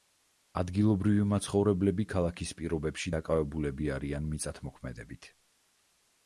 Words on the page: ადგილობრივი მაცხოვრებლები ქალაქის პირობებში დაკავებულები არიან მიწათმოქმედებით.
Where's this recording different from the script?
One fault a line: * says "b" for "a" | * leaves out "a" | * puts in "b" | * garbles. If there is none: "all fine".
all fine